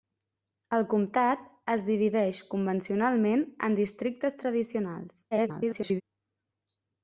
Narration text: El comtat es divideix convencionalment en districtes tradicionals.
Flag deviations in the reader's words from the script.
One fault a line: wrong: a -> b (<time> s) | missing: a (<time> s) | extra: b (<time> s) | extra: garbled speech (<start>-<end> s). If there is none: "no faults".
extra: garbled speech (5.3-6.0 s)